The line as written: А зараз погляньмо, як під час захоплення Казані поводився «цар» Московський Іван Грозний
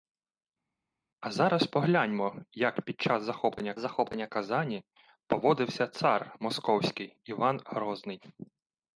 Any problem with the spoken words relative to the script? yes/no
yes